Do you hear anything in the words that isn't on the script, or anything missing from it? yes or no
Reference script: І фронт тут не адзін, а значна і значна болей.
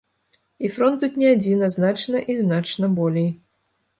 no